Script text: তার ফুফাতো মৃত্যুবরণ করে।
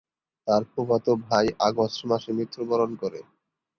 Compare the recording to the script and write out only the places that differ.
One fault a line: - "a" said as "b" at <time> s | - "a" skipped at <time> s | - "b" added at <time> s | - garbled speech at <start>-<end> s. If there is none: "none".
- "ভাই আগস্ট মাসে" added at 1.2 s